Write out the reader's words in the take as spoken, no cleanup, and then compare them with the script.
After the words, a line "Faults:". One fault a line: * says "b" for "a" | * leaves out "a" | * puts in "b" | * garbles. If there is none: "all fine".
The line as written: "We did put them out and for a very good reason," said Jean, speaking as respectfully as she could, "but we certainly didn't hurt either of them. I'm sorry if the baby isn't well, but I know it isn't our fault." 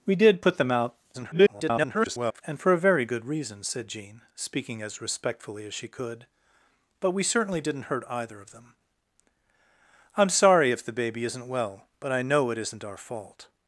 "We did put them out [garbled] and for a very good reason," said Jean, speaking as respectfully as she could, "but we certainly didn't hurt either of them. I'm sorry if the baby isn't well, but I know it isn't our fault."
Faults:
* garbles